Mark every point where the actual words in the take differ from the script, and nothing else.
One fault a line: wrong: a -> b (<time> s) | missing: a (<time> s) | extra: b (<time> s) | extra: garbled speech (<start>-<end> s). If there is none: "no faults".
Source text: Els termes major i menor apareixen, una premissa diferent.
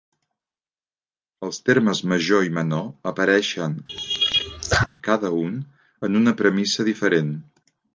extra: cada un en (5.1 s)